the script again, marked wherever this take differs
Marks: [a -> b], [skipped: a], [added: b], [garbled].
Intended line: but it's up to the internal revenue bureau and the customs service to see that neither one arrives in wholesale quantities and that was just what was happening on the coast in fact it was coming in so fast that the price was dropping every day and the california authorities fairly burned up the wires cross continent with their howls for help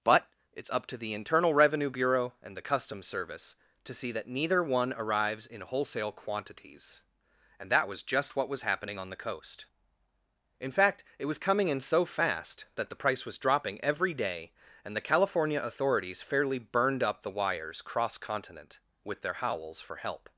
but it's up to the internal revenue bureau and the customs service to see that neither one arrives in wholesale quantities and that was just what was happening on the coast in fact it was coming in so fast that the price was dropping every day and the california authorities fairly burned up the wires cross continent with their howls for help